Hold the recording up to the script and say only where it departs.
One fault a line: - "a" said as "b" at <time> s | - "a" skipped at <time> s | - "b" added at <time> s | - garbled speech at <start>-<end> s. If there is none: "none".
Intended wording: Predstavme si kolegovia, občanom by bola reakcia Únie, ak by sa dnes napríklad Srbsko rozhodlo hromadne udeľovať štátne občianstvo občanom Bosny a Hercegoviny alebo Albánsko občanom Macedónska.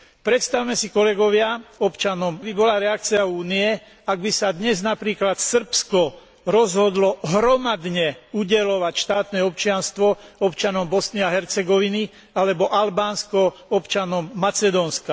none